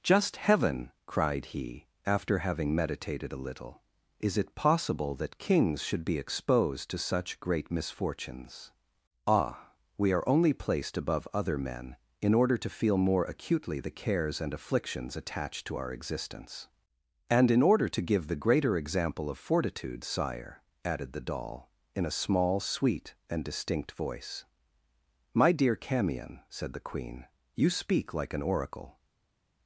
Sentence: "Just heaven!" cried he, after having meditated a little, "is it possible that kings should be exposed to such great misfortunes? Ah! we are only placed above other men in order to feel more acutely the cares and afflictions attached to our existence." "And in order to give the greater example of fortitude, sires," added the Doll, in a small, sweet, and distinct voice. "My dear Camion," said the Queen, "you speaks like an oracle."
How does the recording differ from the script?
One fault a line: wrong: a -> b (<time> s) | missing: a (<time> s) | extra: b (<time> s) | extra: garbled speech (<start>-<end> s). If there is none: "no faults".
wrong: sires -> sire (20.0 s)
wrong: speaks -> speak (27.7 s)